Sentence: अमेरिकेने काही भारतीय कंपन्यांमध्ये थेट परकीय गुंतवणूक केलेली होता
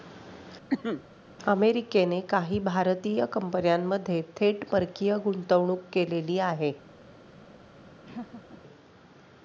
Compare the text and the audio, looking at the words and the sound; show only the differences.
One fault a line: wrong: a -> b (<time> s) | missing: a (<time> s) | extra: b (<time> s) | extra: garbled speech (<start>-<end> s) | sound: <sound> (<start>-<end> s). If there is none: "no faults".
sound: cough (0.7-1.0 s)
wrong: होता -> आहे (6.4 s)
sound: laugh (8.0-8.6 s)